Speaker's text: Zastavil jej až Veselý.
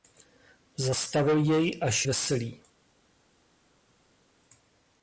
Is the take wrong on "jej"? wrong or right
right